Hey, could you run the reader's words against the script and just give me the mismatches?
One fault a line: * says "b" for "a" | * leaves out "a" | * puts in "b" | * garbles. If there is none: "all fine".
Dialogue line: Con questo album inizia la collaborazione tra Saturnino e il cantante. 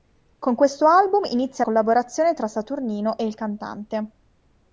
* leaves out "la"